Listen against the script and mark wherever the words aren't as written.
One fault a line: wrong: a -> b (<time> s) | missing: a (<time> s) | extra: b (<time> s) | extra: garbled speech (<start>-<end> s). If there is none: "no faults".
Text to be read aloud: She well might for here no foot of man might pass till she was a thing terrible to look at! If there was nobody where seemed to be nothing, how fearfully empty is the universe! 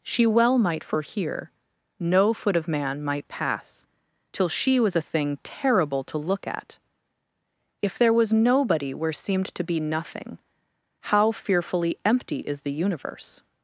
no faults